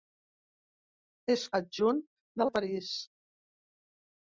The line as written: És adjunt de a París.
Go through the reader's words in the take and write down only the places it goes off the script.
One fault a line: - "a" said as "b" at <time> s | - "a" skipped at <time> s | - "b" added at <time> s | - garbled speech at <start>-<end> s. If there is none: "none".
none